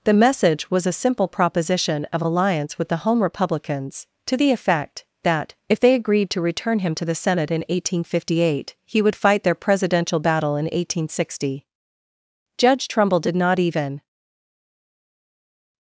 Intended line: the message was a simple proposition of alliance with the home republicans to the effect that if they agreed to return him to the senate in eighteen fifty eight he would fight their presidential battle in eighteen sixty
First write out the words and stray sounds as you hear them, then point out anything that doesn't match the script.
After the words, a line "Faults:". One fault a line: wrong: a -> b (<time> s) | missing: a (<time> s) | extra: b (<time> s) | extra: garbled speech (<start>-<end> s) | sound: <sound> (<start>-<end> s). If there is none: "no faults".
the message was a simple proposition of alliance with the home republicans to the effect that if they agreed to return him to the senate in eighteen fifty eight he would fight their presidential battle in eighteen sixty judge trumbull did not even
Faults:
extra: judge trumbull did not even (12.6 s)